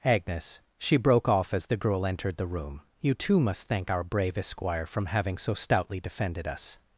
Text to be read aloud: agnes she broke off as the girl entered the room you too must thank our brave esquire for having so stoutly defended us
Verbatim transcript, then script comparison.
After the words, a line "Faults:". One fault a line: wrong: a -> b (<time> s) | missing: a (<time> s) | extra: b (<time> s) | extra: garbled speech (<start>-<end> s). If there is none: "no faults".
agnes she broke off as the girl entered the room you too must thank our brave esquire from having so stoutly defended us
Faults:
wrong: for -> from (4.8 s)